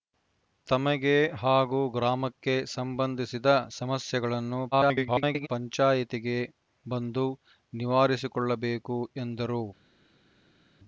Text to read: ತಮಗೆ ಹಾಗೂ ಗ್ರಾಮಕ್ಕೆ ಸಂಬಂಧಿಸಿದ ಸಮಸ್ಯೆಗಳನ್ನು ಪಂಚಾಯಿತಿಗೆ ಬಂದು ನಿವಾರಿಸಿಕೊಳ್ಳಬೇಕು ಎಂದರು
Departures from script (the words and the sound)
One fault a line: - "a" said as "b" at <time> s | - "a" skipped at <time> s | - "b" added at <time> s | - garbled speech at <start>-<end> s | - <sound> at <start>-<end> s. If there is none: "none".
- garbled speech at 4.7-5.5 s